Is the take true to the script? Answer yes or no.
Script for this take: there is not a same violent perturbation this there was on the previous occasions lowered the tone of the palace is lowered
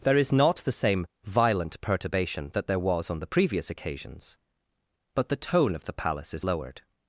no